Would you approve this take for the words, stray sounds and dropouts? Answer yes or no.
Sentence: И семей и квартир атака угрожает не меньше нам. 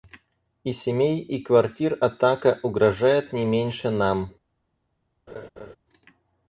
no